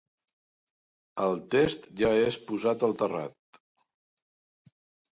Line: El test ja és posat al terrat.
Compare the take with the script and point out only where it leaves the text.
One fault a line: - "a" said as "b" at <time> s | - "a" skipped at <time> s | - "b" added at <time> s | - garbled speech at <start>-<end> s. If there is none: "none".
none